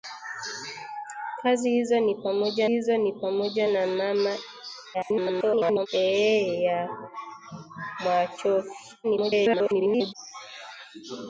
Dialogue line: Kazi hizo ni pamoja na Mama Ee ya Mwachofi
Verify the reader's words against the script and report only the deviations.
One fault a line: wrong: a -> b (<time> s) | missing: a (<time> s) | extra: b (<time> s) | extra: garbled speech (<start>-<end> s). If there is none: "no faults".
extra: hizo ni pamoja (2.7 s)
extra: garbled speech (4.9-5.9 s)
extra: garbled speech (9.0-10.1 s)